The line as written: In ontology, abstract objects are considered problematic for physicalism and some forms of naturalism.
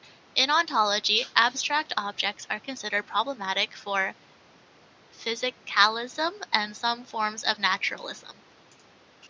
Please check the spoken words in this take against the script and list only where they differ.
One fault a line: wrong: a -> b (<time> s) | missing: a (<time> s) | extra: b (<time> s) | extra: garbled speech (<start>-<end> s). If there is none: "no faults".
no faults